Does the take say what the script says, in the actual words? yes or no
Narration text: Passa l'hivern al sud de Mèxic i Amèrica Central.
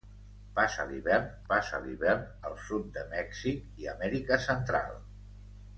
no